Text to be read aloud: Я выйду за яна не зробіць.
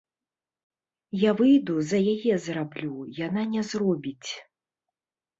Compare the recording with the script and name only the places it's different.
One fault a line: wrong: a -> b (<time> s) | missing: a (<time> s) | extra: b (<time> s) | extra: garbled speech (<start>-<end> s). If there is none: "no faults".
extra: яе зраблю (2.1 s)